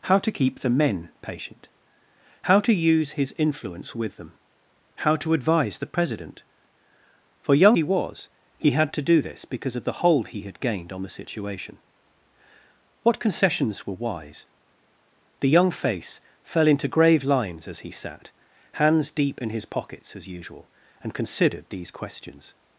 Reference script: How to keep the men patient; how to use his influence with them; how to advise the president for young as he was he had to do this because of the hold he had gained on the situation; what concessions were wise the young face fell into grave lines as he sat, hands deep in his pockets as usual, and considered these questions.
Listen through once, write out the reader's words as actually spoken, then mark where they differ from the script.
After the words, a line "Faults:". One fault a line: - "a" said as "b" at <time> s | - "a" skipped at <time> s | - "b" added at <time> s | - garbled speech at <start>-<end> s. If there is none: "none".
How to keep the men patient; how to use his influence with them; how to advise the president for young he was he had to do this because of the hold he had gained on the situation; what concessions were wise the young face fell into grave lines as he sat, hands deep in his pockets as usual, and considered these questions.
Faults:
- "as" skipped at 7.8 s